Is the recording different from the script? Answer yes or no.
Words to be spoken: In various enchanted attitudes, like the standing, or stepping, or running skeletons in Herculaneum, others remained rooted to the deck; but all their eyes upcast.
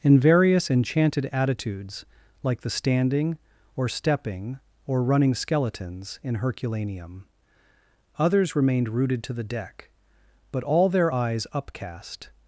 no